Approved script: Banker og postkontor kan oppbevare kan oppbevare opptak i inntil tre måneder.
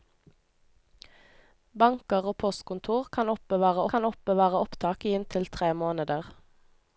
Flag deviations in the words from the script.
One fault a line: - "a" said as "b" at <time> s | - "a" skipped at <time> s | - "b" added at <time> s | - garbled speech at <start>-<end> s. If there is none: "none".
none